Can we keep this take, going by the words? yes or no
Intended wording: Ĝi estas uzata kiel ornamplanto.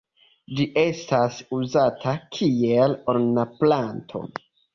yes